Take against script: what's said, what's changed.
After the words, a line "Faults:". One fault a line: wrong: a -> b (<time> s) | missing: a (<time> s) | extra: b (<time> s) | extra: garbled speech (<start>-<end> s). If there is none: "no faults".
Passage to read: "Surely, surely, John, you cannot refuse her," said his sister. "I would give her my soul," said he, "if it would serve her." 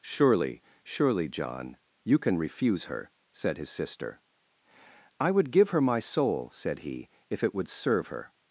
"Surely, surely, John, you can refuse her," said his sister. "I would give her my soul," said he, "if it would serve her."
Faults:
wrong: cannot -> can (2.2 s)